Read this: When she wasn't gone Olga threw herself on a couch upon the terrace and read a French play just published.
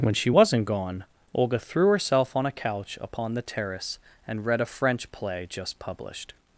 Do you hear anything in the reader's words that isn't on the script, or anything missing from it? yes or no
no